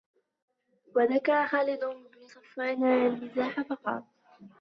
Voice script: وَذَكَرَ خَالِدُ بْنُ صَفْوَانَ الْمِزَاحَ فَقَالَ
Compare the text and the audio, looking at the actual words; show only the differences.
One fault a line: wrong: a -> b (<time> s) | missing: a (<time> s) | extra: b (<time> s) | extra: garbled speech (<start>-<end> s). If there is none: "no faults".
no faults